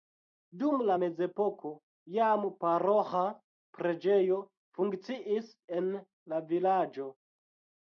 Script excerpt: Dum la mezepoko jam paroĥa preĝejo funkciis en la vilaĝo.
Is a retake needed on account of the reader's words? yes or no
no